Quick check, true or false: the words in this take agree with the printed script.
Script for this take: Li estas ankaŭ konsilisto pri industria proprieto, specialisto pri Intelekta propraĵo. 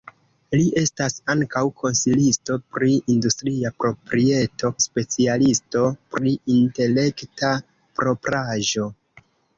true